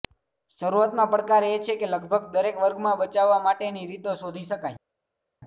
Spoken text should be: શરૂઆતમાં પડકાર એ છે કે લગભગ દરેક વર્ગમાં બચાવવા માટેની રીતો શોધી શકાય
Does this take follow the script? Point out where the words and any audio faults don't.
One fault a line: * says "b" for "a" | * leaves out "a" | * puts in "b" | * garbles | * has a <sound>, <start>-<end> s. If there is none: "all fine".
all fine